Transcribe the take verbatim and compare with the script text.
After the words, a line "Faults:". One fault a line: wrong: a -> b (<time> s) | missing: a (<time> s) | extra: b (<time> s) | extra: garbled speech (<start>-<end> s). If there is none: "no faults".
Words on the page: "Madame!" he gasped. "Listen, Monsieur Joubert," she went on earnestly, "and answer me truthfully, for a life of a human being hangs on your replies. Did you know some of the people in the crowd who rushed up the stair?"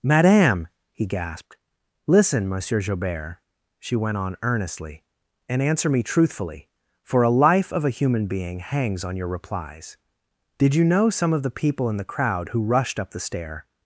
"Madame!" he gasped. "Listen, Monsieur Joubert," she went on earnestly, "and answer me truthfully, for a life of a human being hangs on your replies. Did you know some of the people in the crowd who rushed up the stair?"
Faults:
no faults